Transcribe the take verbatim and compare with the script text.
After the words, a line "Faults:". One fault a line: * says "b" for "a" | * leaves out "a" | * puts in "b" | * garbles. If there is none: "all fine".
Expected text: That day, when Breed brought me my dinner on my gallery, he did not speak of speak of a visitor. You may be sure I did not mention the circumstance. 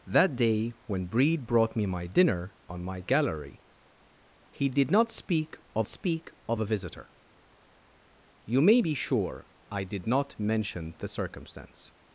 That day, when Breed brought me my dinner on my gallery, he did not speak of speak of a visitor. You may be sure I did not mention the circumstance.
Faults:
all fine